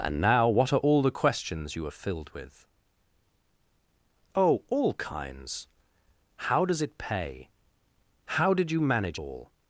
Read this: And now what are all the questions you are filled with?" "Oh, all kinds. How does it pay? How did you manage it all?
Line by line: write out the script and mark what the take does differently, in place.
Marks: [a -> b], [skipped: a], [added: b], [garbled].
And now what are all the questions you are filled with?" "Oh, all kinds. How does it pay? How did you manage [skipped: it] all?